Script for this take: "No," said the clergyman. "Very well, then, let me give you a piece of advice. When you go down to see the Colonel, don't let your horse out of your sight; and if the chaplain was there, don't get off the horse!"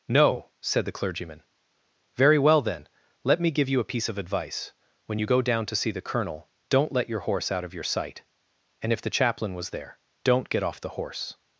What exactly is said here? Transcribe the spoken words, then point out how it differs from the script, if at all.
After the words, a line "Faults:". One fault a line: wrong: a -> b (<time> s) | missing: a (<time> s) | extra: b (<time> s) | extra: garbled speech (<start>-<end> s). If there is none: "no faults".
"No," said the clergyman. "Very well, then, let me give you a piece of advice. When you go down to see the Colonel, don't let your horse out of your sight; and if the chaplain was there, don't get off the horse!"
Faults:
no faults